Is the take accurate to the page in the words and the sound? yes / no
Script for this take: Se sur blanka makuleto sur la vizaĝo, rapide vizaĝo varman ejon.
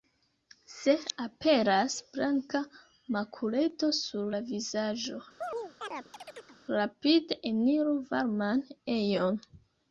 no